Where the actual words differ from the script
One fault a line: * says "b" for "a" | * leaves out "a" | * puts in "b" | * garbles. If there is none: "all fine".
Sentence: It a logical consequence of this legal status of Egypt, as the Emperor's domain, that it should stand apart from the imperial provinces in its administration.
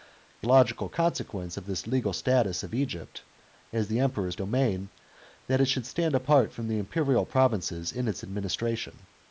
all fine